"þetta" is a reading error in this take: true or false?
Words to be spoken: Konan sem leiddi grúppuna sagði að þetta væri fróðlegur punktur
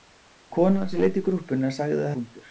true